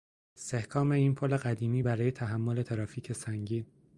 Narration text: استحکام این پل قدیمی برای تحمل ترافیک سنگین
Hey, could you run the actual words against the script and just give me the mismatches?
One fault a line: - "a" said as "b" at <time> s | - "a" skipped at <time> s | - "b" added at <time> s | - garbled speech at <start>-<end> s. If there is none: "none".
none